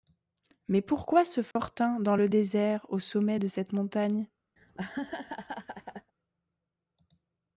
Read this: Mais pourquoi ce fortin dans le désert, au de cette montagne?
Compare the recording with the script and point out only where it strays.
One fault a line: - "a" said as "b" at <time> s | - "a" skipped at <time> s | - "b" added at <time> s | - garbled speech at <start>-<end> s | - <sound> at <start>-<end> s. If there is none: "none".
- dropout at 1.5-1.6 s
- "sommet" added at 3.0 s
- laugh at 4.6-6.1 s